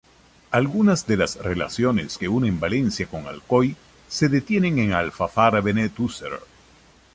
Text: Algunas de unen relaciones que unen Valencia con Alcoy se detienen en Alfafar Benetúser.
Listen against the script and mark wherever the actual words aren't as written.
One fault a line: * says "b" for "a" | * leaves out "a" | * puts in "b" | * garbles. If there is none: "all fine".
* says "las" for "unen"